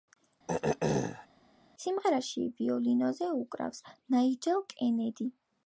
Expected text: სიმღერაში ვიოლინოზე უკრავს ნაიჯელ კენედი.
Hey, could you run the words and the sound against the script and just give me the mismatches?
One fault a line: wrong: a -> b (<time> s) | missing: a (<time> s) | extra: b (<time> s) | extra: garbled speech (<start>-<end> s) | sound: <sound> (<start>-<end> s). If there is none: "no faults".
sound: throat clearing (0.5-1.3 s)